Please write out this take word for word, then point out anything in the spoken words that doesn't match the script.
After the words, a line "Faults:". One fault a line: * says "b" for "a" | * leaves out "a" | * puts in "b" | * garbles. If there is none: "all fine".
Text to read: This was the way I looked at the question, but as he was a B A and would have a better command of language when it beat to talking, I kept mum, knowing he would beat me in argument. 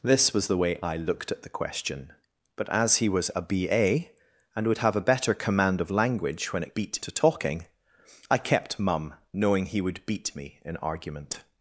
This was the way I looked at the question, but as he was a B A and would have a better command of language when it beat to talking, I kept mum, knowing he would beat me in argument.
Faults:
all fine